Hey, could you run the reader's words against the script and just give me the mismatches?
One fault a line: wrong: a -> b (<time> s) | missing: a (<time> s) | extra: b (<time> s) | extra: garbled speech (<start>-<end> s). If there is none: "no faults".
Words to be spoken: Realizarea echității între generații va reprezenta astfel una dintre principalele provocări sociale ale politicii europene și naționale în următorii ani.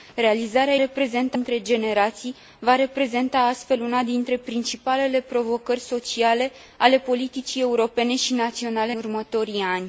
wrong: echității -> reprezenta (0.8 s)
missing: în (8.9 s)